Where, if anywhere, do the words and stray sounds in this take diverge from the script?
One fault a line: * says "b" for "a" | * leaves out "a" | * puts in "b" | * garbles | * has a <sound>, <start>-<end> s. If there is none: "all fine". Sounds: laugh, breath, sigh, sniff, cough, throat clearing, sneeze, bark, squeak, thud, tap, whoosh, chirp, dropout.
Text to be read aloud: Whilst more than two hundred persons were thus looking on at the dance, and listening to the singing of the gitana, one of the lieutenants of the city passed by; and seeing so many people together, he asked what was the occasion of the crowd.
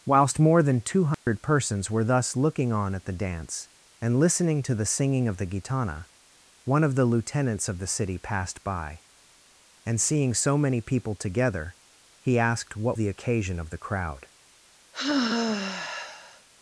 * has a dropout, 1.1-1.3 s
* leaves out "was"
* has a sigh, 14.9-16.5 s